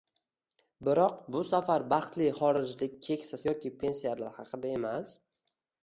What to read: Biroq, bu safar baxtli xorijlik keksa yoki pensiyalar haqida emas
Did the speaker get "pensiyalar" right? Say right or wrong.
right